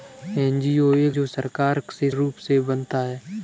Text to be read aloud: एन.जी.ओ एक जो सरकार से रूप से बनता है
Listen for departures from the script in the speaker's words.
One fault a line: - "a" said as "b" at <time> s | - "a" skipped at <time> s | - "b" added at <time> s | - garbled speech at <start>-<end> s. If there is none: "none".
none